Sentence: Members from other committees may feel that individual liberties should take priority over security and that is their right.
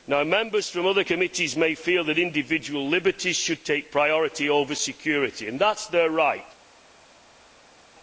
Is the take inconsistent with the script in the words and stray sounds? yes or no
no